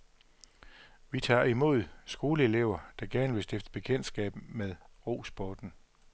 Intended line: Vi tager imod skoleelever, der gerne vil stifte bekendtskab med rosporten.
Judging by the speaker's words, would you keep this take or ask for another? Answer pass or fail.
pass